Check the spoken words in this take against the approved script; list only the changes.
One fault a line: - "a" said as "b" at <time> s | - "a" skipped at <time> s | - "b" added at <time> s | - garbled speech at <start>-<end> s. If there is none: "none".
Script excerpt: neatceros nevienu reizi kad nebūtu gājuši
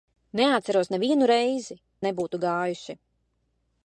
- "kad" skipped at 1.8 s